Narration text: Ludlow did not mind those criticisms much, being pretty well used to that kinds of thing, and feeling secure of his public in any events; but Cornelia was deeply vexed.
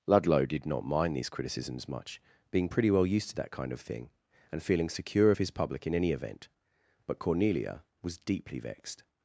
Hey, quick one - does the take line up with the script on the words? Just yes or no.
no